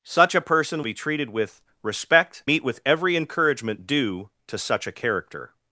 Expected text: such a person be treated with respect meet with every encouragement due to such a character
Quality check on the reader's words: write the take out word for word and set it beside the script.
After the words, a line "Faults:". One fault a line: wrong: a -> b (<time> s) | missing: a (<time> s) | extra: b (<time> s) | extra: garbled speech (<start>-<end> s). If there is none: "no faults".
such a person be treated with respect meet with every encouragement due to such a character
Faults:
no faults